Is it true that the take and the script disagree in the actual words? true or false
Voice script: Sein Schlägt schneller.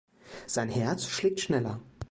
true